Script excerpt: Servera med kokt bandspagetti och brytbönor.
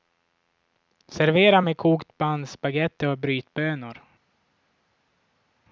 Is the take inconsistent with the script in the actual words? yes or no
no